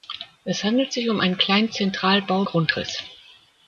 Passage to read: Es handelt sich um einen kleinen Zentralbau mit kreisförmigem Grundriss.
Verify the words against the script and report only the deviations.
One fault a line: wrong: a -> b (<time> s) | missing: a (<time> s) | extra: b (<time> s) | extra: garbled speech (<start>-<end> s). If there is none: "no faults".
missing: mit kreisförmigem (2.5 s)